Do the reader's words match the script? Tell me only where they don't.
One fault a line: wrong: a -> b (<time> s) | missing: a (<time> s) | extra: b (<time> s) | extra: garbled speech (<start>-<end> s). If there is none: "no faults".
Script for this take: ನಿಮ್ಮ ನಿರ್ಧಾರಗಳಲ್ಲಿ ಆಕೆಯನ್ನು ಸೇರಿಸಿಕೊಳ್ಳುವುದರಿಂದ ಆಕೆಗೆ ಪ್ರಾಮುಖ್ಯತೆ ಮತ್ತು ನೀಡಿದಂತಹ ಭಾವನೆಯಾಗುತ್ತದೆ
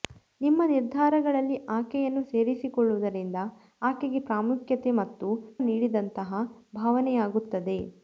no faults